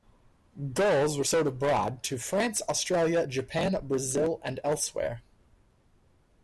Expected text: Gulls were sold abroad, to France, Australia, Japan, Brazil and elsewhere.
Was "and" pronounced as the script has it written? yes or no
yes